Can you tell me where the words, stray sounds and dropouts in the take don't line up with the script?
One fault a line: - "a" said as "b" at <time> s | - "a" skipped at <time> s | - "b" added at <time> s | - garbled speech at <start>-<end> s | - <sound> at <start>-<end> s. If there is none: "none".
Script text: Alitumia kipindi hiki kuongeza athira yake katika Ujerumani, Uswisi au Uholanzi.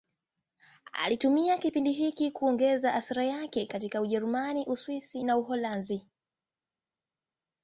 - "au" said as "na" at 5.2 s